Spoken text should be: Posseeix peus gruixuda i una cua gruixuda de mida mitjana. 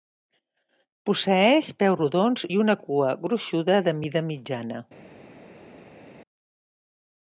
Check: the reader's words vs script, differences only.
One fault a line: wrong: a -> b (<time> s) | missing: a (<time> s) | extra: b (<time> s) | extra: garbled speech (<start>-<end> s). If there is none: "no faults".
wrong: gruixuda -> rodons (2.0 s)